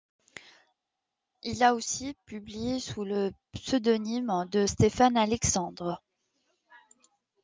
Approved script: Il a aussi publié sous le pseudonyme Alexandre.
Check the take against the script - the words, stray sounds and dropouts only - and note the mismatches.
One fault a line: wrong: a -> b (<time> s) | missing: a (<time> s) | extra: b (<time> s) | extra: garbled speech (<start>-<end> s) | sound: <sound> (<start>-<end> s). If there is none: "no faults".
extra: de Stéphane (4.5 s)